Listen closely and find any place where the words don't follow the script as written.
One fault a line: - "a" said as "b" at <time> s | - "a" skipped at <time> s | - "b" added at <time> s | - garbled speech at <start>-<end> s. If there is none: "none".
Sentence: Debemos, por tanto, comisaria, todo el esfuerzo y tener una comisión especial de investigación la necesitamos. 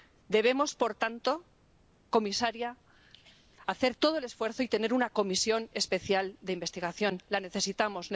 - "hacer" added at 3.7 s